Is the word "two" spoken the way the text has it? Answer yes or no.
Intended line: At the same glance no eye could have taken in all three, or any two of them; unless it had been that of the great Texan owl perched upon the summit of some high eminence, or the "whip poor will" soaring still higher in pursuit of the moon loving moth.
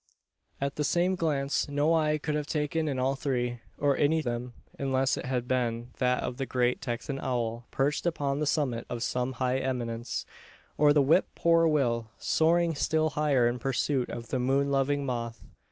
no